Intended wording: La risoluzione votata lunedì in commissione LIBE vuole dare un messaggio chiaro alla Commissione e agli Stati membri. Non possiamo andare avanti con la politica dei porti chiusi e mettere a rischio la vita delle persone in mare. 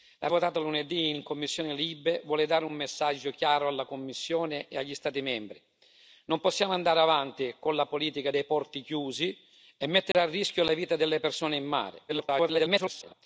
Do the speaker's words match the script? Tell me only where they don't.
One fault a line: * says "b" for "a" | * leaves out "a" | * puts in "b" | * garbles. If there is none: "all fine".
* leaves out "risoluzione"
* garbles